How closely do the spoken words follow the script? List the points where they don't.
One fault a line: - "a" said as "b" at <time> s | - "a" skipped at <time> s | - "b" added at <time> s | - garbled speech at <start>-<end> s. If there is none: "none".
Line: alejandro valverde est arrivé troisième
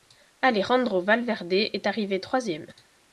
none